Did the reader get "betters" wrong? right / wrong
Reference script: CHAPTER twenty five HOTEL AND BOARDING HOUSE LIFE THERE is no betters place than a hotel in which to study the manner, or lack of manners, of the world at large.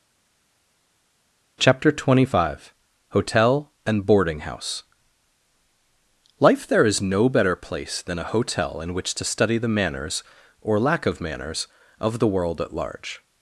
wrong